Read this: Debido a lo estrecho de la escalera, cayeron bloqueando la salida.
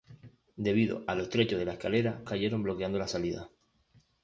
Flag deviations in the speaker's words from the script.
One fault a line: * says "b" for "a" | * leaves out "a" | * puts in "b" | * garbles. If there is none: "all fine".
all fine